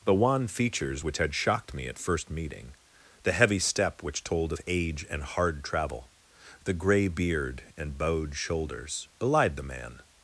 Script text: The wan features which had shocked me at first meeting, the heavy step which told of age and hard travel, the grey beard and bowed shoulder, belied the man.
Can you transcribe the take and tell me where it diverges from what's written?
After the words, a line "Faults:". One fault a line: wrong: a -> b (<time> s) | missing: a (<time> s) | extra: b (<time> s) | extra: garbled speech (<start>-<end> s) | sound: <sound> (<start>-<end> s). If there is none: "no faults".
The wan features which had shocked me at first meeting, the heavy step which told of age and hard travel, the grey beard and bowed shoulders, belied the man.
Faults:
wrong: shoulder -> shoulders (8.3 s)